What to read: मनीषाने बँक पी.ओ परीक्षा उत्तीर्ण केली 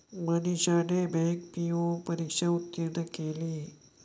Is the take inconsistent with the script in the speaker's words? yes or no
no